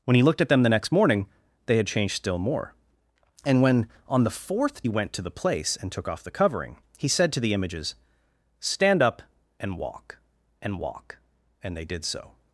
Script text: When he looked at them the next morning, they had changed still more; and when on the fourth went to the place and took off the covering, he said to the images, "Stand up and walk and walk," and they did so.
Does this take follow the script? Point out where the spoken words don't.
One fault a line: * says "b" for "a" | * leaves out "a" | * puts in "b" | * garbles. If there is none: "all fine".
all fine